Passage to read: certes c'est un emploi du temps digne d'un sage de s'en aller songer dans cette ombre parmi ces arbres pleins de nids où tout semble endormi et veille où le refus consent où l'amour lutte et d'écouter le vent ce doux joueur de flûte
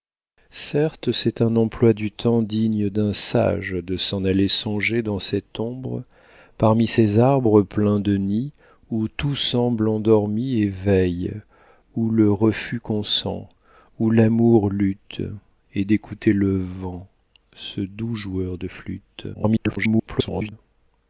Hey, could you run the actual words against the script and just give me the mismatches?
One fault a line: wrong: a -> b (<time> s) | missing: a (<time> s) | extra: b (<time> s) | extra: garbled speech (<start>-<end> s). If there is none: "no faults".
extra: garbled speech (19.3-20.5 s)